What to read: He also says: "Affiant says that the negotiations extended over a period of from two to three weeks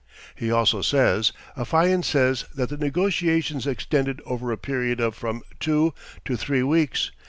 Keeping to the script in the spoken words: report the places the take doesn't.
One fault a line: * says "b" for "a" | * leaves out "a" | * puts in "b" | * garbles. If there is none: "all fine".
all fine